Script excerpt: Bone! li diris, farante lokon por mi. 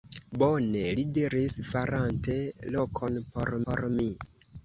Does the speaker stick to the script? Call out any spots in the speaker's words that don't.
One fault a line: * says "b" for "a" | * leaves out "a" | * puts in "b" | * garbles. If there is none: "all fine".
* puts in "por"